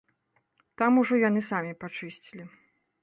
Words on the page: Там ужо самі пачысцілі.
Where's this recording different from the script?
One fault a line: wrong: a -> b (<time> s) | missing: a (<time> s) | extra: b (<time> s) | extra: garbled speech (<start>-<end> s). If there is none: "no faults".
extra: яны (1.3 s)